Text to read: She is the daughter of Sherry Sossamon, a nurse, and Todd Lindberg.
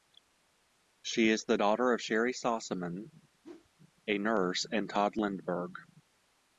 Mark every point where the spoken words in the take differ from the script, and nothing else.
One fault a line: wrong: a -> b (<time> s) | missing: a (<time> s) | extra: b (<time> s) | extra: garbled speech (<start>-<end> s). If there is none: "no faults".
no faults